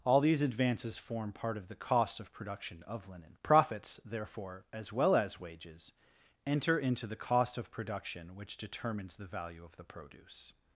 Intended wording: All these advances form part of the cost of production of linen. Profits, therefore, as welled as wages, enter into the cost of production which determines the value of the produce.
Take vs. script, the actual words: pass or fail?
fail